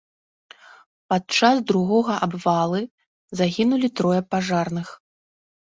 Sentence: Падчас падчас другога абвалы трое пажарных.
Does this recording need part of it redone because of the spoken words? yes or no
yes